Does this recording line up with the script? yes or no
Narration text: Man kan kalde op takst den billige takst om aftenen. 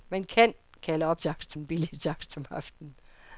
yes